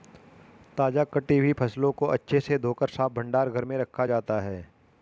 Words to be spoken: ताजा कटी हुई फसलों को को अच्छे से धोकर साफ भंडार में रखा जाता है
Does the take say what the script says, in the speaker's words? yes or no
no